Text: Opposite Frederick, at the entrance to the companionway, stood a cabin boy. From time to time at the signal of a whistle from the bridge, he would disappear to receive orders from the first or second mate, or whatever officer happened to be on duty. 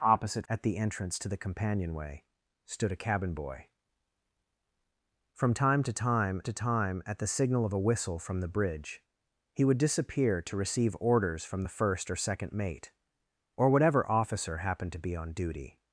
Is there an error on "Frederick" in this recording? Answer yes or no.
yes